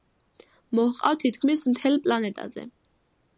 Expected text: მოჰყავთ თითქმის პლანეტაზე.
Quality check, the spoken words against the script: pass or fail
fail